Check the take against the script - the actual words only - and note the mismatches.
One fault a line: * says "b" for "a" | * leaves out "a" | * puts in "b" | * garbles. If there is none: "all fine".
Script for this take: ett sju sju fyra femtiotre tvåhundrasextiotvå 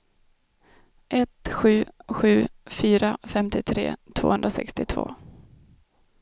all fine